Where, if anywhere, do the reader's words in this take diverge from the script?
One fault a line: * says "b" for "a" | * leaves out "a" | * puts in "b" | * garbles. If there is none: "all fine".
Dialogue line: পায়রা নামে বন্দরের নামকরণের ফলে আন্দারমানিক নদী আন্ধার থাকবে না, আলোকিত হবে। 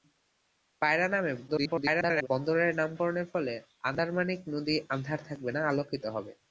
* garbles